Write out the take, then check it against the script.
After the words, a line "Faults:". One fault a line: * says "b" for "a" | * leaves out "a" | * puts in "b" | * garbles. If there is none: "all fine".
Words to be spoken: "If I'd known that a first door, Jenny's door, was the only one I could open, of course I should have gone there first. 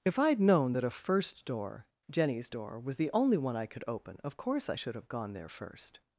"If I'd known that a first door, Jenny's door, was the only one I could open, of course I should have gone there first.
Faults:
all fine